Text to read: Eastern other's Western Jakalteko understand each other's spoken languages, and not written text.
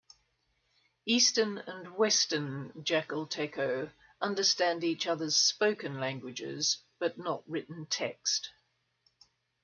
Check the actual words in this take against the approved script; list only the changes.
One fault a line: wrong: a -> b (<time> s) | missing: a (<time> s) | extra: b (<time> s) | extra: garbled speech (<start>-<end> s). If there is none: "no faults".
wrong: other's -> and (1.6 s)
wrong: and -> but (7.0 s)